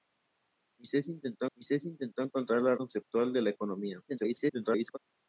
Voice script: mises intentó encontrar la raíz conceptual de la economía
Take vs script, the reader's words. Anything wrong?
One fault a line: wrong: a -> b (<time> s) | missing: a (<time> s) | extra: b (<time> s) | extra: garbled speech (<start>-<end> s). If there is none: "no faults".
extra: mises intentó (1.6 s)
missing: raíz (2.7 s)
extra: garbled speech (4.1-5.0 s)